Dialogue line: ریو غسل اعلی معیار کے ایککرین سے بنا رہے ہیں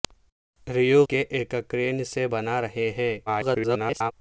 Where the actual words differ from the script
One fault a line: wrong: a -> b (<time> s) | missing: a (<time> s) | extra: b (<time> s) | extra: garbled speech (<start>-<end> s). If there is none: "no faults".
missing: غسل اعلی معیار (1.0 s)
extra: garbled speech (3.3-4.1 s)